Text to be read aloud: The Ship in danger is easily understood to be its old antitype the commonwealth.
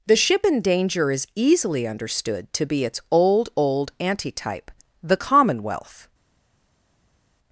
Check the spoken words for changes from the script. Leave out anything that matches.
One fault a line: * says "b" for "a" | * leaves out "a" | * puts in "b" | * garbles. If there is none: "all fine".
* puts in "old"